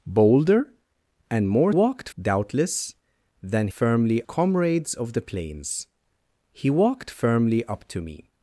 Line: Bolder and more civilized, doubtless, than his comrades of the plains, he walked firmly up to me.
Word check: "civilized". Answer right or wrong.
wrong